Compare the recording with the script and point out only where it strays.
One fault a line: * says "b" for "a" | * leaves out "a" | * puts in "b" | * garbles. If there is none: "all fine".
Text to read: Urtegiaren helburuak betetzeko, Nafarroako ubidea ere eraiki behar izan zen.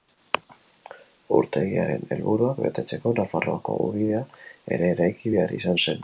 all fine